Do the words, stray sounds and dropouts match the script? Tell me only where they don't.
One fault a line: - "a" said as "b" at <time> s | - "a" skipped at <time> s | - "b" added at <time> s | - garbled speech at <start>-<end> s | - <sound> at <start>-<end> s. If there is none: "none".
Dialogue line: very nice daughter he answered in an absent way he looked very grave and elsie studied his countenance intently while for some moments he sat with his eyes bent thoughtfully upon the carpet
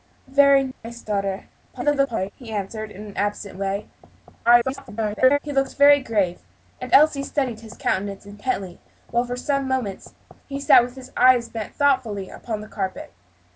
- dropout at 0.7-0.8 s
- garbled speech at 1.7-2.3 s
- garbled speech at 4.4-5.4 s